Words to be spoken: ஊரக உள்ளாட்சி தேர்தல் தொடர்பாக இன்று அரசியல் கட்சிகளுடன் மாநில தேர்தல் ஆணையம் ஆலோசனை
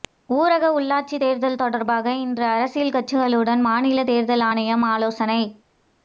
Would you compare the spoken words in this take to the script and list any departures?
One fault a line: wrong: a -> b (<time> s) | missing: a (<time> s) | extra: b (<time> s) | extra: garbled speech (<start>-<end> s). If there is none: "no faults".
no faults